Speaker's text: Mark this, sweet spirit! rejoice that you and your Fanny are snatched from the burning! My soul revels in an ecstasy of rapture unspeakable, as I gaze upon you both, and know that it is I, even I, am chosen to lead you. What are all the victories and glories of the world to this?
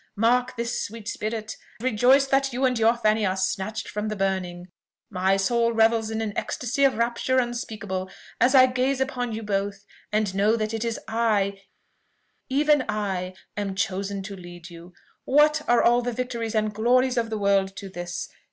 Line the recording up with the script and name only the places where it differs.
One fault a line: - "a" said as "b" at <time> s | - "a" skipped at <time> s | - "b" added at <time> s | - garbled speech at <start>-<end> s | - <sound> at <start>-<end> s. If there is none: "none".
none